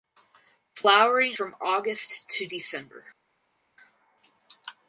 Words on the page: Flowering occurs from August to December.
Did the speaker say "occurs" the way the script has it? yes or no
no